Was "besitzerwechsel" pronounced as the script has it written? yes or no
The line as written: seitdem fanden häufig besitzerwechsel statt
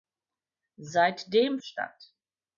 no